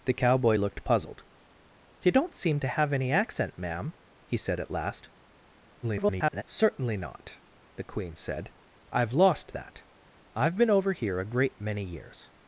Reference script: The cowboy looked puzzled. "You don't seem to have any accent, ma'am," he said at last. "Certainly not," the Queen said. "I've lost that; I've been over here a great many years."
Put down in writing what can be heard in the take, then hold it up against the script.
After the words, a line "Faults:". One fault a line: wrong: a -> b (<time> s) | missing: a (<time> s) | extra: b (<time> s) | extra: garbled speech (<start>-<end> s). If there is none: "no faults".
The cowboy looked puzzled. "You don't seem to have any accent, ma'am," he said at last. [garbled] "Certainly not," the Queen said. "I've lost that; I've been over here a great many years."
Faults:
extra: garbled speech (5.8-6.4 s)